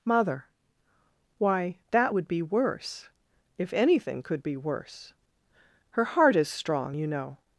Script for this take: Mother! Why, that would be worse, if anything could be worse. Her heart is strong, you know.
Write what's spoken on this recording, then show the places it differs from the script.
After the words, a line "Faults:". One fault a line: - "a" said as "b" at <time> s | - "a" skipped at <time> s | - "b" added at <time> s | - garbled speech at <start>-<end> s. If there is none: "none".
Mother! Why, that would be worse, if anything could be worse. Her heart is strong, you know.
Faults:
none